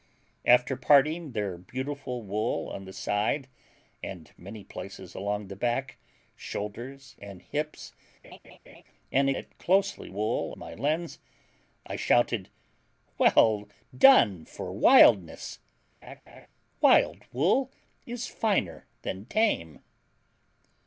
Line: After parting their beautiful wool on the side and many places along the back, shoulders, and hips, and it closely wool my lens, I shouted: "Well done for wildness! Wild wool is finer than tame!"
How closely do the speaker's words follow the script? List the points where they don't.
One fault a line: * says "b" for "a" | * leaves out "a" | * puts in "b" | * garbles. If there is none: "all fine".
all fine